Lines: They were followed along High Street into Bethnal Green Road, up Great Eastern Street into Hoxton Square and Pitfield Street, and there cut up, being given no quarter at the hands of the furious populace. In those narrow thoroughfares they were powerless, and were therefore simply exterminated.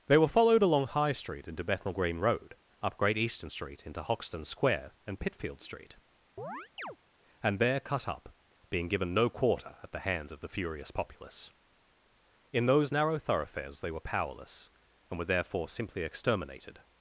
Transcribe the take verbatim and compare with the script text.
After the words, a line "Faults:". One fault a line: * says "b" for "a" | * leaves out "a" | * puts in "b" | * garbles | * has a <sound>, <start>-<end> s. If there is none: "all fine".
They were followed along High Street into Bethnal Green Road, up Great Eastern Street into Hoxton Square and Pitfield Street, and there cut up, being given no quarter at the hands of the furious populace. In those narrow thoroughfares they were powerless, and were therefore simply exterminated.
Faults:
* has a chirp, 6.4-7.0 s